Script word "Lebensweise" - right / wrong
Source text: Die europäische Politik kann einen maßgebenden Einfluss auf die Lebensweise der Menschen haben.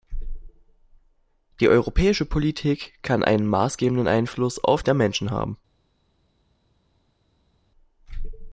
wrong